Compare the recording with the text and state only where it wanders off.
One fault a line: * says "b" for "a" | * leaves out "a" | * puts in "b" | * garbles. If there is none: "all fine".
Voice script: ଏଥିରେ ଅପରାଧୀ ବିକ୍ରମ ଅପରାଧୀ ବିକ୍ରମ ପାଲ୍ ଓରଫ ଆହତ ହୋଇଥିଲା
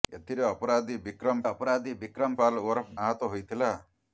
all fine